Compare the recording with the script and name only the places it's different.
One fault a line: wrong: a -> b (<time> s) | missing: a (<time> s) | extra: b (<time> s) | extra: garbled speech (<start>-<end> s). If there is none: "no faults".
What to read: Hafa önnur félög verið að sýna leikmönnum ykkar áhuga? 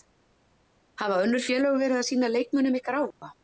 no faults